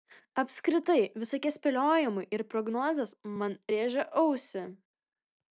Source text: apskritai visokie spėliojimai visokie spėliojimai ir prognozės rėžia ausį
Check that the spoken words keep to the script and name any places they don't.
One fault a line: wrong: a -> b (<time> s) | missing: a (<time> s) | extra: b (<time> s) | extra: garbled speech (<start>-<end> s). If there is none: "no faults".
missing: visokie spėliojimai (2.2 s)
extra: man (3.4 s)